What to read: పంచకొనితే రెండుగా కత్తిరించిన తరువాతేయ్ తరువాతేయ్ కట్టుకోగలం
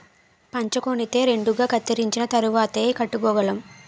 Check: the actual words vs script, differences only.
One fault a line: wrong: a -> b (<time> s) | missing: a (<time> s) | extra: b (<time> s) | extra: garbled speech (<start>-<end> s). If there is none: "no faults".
missing: తరువాతేయ్ (2.9 s)